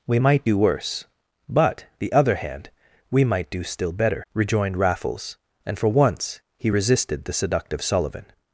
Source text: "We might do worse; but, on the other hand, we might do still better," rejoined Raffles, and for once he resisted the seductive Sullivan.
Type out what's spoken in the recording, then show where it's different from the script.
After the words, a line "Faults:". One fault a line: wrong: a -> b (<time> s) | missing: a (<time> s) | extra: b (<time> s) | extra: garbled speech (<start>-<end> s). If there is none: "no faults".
"We might do worse; but, the other hand, we might do still better," rejoined Raffles, and for once he resisted the seductive Sullivan.
Faults:
missing: on (1.8 s)